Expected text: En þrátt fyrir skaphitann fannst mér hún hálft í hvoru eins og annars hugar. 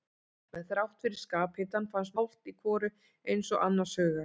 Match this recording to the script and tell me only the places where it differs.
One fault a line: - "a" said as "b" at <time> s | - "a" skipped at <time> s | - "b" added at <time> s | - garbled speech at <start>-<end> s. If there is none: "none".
- "mér hún" skipped at 2.2 s